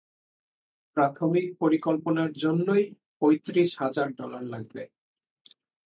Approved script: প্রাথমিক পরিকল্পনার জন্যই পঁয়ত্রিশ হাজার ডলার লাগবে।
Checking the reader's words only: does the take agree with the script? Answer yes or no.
yes